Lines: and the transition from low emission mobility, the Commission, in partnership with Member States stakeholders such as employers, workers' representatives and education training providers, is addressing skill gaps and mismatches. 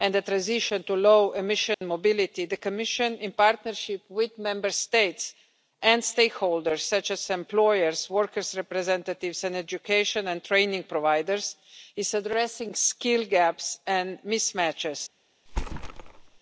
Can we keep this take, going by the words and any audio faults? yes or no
no